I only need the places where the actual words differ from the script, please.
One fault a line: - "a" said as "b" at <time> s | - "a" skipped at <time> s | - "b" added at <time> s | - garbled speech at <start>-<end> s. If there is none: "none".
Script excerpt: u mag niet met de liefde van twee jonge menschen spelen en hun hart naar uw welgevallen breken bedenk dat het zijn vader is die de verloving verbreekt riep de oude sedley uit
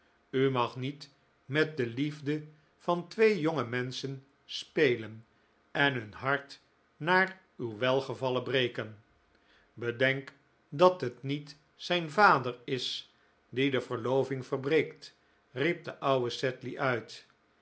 - "niet" added at 11.2 s